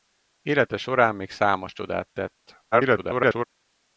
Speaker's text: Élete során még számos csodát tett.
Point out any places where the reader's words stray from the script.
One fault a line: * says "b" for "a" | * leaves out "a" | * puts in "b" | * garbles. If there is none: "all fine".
* garbles